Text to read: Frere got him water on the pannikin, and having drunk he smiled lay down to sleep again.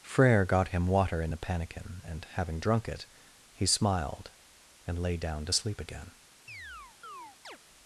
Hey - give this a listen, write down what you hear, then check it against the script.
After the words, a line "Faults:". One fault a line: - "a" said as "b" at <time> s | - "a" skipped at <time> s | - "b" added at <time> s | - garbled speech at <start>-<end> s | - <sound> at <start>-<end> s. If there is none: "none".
Frere got him water in the pannikin, and having drunk it, he smiled and lay down to sleep again.
Faults:
- "on" said as "in" at 1.2 s
- "it" added at 2.9 s
- "and" added at 4.9 s
- chirp at 6.5-7.6 s